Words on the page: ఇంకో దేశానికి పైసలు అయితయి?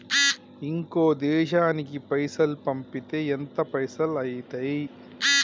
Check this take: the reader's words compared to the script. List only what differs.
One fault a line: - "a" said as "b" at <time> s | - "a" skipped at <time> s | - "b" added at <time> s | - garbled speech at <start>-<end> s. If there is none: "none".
- "పైసల్ పంపితే ఎంత" added at 2.1 s